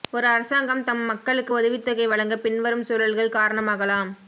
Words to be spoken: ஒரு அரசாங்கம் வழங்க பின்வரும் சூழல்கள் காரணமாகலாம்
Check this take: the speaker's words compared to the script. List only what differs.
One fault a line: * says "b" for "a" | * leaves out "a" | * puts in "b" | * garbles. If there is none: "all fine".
* puts in "தம் மக்களுக்கு உதவித்தொகை"